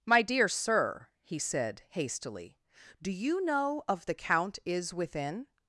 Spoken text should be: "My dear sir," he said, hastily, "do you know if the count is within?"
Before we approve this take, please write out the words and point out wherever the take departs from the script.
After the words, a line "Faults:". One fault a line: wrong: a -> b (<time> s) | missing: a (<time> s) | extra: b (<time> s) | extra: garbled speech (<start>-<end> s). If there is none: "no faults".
"My dear sir," he said, hastily, "do you know of the count is within?"
Faults:
wrong: if -> of (3.9 s)